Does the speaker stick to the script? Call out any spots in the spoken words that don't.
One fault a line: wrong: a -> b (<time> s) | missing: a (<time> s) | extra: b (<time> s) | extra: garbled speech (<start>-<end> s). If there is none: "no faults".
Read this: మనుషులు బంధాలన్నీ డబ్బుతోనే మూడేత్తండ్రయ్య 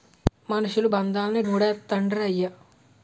missing: డబ్బుతోనే (1.4 s)